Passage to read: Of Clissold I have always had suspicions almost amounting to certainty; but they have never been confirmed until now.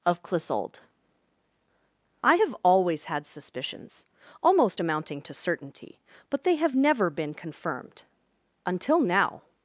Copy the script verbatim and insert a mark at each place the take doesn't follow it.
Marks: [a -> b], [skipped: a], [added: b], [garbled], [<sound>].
Of Clissold I have always had suspicions almost amounting to certainty; but they have never been confirmed until now.